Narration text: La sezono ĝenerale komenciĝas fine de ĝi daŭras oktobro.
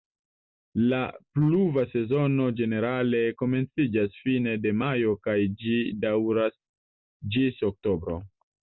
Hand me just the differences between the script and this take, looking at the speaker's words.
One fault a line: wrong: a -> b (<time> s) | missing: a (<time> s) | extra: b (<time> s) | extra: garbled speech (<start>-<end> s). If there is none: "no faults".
extra: pluva (1.4 s)
extra: majo kaj (4.8 s)
extra: ĝis (7.4 s)